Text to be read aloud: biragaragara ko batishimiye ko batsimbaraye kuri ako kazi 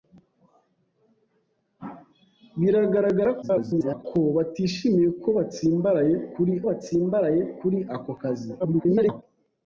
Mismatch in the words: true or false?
true